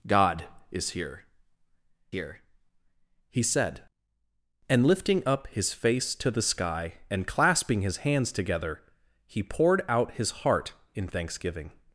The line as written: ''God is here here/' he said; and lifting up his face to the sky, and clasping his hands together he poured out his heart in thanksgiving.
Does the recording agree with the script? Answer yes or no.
yes